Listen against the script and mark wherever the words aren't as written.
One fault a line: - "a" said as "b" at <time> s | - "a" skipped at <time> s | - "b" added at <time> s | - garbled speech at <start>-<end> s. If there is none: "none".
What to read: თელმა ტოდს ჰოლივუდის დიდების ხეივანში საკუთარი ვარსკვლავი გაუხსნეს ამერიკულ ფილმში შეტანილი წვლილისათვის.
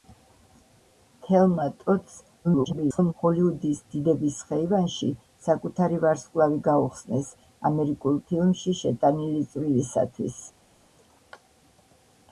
- garbled speech at 2.4-3.1 s